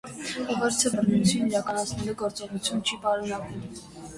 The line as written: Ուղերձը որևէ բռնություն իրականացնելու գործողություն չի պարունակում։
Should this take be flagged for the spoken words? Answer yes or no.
yes